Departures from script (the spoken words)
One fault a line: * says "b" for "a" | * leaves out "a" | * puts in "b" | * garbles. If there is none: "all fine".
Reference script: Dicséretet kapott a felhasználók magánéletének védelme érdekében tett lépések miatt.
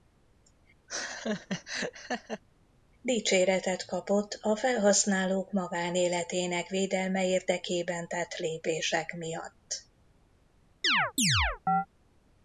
all fine